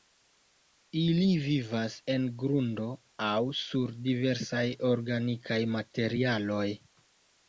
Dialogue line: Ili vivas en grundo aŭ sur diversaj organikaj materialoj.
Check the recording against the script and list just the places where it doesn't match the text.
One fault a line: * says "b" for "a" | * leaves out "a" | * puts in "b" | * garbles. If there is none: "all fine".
all fine